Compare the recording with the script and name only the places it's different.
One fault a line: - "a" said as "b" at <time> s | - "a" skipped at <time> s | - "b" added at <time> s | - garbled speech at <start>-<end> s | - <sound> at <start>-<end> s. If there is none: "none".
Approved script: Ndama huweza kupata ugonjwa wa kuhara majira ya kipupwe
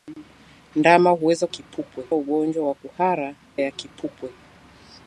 - "kupata" said as "kipupwe" at 1.5 s
- "majira" skipped at 3.4 s